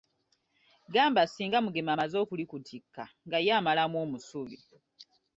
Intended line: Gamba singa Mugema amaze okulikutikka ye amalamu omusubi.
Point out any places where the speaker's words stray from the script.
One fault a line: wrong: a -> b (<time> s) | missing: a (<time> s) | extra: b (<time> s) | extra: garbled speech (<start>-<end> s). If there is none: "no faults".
extra: nga (3.3 s)